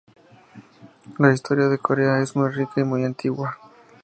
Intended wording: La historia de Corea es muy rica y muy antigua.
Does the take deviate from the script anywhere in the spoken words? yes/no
no